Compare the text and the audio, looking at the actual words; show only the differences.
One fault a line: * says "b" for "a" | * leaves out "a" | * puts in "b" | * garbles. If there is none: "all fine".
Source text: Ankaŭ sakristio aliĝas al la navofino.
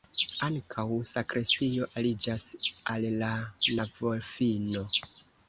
all fine